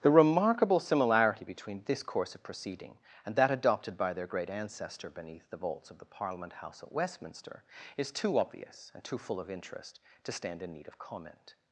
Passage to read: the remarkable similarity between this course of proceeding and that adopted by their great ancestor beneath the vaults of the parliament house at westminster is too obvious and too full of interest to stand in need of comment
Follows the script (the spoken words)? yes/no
yes